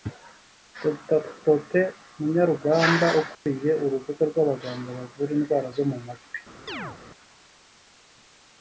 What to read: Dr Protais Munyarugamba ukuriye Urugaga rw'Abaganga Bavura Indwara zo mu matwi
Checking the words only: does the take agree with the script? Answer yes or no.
yes